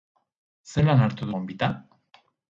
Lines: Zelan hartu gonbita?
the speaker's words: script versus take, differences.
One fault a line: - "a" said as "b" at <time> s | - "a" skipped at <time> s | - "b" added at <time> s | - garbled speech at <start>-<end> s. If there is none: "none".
none